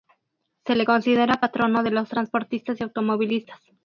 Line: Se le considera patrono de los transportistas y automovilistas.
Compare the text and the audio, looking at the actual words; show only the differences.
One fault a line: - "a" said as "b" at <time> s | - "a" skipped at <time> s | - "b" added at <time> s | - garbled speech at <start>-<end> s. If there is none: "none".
none